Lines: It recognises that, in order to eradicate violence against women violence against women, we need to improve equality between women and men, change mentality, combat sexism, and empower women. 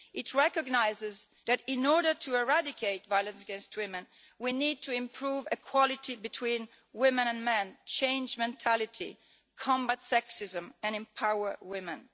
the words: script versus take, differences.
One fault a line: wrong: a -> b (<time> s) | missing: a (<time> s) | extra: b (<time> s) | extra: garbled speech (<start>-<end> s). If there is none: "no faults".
missing: violence against women (4.1 s)